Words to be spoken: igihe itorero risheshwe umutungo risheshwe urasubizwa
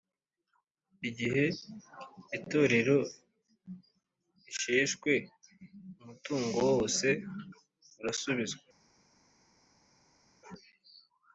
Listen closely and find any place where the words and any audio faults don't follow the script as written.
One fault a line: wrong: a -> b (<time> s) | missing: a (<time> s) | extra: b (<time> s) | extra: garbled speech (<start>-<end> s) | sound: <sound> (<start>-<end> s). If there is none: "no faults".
wrong: risheshwe -> wose (6.7 s)